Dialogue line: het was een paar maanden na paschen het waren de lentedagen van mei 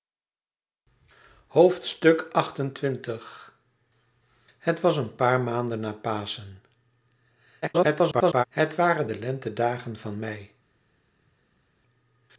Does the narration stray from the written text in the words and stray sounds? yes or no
yes